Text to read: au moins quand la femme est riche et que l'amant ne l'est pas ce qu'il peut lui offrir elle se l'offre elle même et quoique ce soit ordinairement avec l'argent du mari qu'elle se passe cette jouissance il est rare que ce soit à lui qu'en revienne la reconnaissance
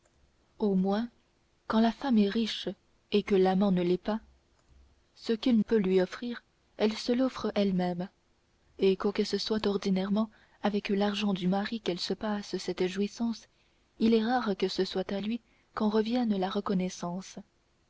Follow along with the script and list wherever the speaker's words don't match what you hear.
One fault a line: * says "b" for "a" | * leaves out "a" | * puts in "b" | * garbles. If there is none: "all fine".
all fine